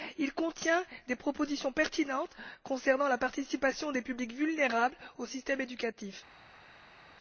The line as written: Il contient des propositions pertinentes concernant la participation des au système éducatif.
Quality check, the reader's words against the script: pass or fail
fail